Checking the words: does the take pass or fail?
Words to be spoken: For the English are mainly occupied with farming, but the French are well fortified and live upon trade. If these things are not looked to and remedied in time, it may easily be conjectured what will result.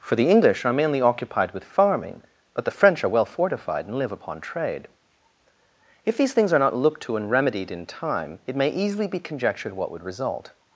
fail